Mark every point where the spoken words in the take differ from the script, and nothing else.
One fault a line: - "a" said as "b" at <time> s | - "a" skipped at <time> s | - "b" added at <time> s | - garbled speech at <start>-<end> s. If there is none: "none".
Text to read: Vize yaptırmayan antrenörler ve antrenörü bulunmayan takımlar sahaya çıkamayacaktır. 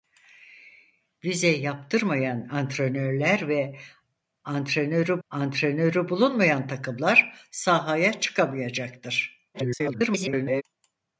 - "antrenörü" added at 5.3 s
- garbled speech at 9.5-10.6 s